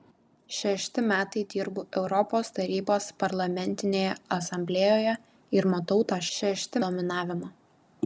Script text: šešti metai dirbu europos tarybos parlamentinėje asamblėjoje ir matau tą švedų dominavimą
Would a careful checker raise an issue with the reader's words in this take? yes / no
yes